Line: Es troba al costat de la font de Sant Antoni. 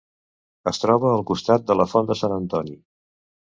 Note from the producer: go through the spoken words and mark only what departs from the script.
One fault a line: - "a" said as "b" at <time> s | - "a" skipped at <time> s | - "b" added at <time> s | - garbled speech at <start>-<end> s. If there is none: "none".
none